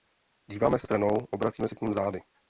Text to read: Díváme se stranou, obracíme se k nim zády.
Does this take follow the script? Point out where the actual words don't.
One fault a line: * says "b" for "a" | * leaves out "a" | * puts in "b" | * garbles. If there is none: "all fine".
all fine